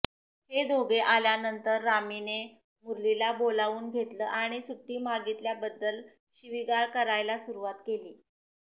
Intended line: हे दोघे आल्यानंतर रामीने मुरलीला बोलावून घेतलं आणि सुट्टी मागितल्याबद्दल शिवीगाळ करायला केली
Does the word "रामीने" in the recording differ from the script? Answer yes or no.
no